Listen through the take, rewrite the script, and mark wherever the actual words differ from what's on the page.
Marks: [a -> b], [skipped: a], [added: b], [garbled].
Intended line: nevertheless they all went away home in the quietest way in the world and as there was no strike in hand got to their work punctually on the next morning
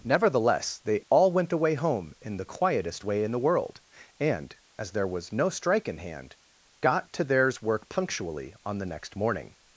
nevertheless they all went away home in the quietest way in the world and as there was no strike in hand got to [their -> theirs] work punctually on the next morning